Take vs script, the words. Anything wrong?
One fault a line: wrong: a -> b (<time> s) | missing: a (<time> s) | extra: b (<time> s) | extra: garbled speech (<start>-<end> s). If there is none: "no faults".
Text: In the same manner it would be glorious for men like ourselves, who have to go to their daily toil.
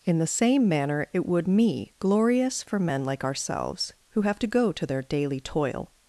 wrong: be -> me (1.5 s)